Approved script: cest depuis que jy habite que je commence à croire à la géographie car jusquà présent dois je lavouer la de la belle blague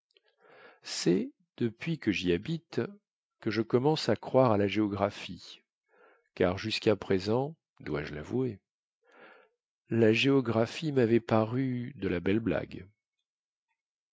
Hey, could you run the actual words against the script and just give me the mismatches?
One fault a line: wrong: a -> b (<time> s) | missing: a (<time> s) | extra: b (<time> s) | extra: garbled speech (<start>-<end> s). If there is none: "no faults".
extra: géographie mavait paru (10.1 s)